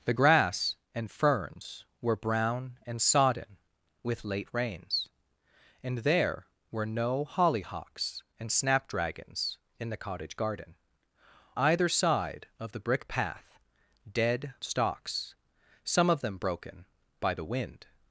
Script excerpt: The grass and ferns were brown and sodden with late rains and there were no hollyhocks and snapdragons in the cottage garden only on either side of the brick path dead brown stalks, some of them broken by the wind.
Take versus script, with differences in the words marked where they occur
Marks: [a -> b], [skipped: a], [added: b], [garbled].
The grass and ferns were brown and sodden with late rains and there were no hollyhocks and snapdragons in the cottage garden [skipped: only on] either side of the brick path dead [skipped: brown] stalks, some of them broken by the wind.